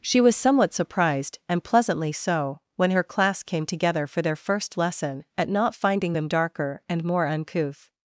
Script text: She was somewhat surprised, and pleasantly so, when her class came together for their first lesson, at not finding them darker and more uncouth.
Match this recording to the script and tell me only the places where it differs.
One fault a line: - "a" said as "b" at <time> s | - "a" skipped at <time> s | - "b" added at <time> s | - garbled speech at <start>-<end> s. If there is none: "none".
none